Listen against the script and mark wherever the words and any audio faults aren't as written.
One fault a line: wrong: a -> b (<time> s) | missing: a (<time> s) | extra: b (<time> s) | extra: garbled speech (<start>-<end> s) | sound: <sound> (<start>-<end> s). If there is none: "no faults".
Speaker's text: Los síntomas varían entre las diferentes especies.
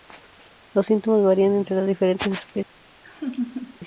sound: laugh (3.0-3.8 s)